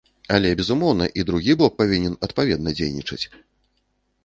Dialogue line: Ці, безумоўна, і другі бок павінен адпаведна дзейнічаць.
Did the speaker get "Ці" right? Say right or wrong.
wrong